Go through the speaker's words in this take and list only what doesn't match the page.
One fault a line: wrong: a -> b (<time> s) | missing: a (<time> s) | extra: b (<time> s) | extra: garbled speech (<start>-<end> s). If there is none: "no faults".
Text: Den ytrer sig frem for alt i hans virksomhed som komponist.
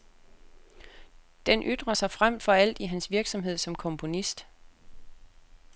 no faults